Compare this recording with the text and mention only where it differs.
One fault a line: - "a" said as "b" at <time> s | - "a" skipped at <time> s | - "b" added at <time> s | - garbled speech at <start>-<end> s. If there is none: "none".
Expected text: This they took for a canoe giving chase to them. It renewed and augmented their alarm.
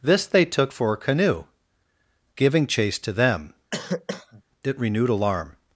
- "and augmented their" skipped at 5.1 s